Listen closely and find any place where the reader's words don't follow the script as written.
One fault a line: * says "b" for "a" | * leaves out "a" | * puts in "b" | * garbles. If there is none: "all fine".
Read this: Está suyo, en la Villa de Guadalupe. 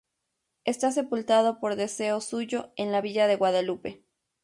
* puts in "sepultado por deseo"